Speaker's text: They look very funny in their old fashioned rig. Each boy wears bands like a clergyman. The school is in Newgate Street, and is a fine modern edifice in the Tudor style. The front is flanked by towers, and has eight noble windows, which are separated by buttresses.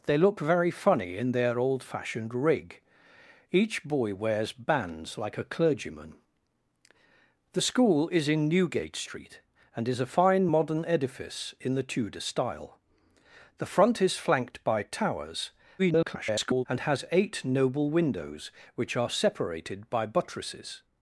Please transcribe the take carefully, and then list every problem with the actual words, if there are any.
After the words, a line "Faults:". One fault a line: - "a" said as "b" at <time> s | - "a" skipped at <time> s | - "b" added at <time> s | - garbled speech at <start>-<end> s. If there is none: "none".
They look very funny in their old fashioned rig. Each boy wears bands like a clergyman. The school is in Newgate Street, and is a fine modern edifice in the Tudor style. The front is flanked by towers, [garbled] and has eight noble windows, which are separated by buttresses.
Faults:
- garbled speech at 15.8-16.7 s